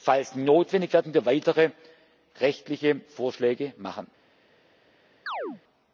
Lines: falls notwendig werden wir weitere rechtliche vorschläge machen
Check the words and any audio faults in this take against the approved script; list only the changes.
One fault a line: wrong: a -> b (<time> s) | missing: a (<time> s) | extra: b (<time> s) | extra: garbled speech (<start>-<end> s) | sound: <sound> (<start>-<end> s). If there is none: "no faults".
sound: chirp (5.3-5.6 s)